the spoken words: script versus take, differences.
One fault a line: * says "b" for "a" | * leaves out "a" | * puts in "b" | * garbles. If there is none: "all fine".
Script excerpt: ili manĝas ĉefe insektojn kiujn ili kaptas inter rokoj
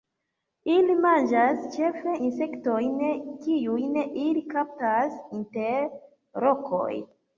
all fine